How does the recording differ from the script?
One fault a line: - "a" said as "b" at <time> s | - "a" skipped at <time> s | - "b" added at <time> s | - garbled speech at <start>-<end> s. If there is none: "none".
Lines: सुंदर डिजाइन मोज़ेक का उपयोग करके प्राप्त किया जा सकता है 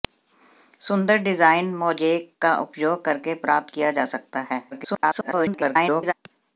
- garbled speech at 4.7-6.1 s